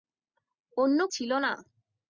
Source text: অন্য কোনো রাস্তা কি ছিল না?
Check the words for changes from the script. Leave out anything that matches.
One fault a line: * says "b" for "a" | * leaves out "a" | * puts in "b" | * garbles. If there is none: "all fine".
* leaves out "কোনো রাস্তা কি"